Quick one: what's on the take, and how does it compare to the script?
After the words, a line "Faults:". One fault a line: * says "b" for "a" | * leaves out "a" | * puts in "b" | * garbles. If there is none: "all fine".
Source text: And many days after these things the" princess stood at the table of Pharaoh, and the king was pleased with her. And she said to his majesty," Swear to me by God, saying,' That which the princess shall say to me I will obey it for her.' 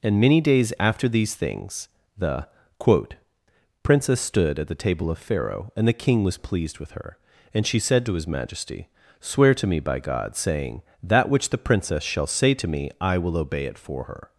And many days after these things the" quote princess stood at the table of Pharaoh, and the king was pleased with her. And she said to his majesty," Swear to me by God, saying,' That which the princess shall say to me I will obey it for her.'
Faults:
* puts in "quote"